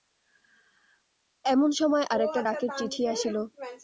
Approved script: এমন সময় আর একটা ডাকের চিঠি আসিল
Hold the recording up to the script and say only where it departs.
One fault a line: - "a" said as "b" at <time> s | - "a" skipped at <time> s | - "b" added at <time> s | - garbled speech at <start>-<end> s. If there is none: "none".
none